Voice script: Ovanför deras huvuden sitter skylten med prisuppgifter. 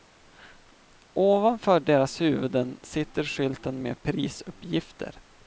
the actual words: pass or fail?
pass